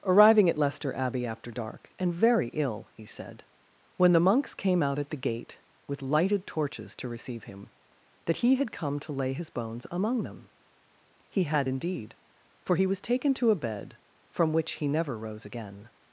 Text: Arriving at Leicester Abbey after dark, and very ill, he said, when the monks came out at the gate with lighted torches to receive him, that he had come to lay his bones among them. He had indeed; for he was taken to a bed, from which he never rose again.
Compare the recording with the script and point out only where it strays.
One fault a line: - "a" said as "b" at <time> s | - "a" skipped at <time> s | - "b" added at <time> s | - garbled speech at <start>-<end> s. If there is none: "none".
none